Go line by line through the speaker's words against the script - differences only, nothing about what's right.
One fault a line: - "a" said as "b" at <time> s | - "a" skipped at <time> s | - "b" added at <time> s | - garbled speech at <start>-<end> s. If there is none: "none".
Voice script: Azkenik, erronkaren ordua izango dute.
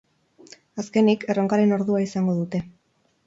none